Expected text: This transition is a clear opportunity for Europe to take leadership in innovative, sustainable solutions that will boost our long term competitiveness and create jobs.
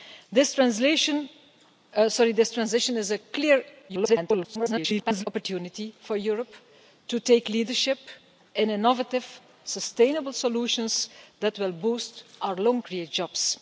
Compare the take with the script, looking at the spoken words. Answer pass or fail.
fail